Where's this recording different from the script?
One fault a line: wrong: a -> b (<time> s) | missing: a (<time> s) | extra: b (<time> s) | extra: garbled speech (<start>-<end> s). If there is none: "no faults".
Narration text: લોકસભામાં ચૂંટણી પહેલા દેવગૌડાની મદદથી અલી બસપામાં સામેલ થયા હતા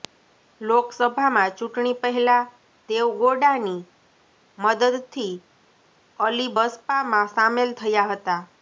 no faults